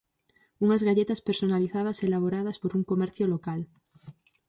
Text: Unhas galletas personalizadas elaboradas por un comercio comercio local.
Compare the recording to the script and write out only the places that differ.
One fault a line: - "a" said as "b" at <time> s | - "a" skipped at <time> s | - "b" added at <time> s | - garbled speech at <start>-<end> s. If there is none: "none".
- "comercio" skipped at 3.3 s